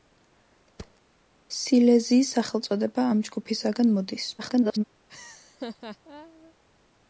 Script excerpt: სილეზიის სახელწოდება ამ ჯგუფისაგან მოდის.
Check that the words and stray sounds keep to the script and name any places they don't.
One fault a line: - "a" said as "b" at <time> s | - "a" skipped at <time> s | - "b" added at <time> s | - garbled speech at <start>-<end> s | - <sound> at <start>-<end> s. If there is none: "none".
- thud at 0.8-1.0 s
- garbled speech at 4.4-4.8 s
- laugh at 5.1-6.5 s